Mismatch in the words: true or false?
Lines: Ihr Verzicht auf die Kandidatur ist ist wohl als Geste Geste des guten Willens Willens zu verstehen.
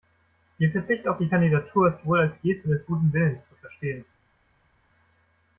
true